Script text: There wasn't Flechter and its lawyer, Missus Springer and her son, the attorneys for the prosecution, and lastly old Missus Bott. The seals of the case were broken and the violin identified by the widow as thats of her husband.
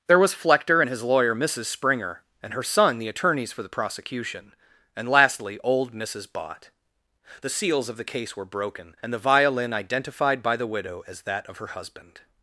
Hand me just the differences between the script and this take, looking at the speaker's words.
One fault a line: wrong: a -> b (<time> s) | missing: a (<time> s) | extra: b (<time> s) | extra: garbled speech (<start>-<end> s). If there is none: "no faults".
wrong: wasn't -> was (0.2 s)
wrong: its -> his (0.9 s)
wrong: thats -> that (11.2 s)